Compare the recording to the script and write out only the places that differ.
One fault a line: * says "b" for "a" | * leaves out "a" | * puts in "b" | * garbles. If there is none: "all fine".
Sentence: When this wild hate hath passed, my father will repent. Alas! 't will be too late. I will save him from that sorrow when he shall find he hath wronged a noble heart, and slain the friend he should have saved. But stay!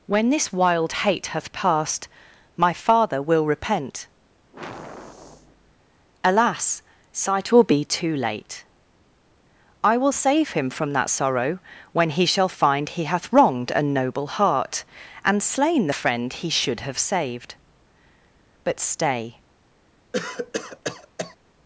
* says "sight" for "t"